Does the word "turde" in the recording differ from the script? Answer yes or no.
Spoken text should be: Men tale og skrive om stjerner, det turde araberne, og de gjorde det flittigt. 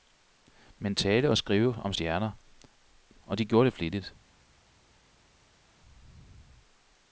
yes